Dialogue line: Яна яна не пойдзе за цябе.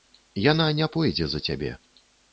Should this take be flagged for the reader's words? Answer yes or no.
yes